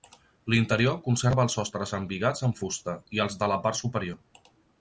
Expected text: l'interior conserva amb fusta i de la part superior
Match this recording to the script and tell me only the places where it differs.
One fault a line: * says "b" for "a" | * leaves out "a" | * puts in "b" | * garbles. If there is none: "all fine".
* puts in "els sostres embigats"
* puts in "els"